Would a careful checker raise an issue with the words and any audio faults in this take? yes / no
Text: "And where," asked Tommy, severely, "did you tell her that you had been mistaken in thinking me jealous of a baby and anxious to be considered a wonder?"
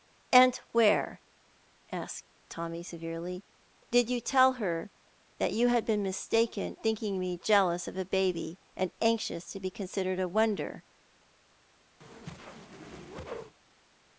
yes